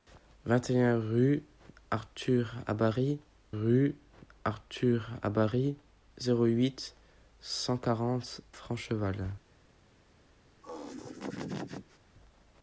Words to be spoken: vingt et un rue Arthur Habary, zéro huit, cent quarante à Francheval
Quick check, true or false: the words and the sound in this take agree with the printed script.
false